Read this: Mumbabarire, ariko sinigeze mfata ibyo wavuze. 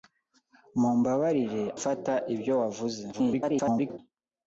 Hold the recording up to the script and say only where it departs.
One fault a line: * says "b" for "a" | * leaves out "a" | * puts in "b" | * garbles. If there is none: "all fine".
* leaves out "ariko sinigeze"
* garbles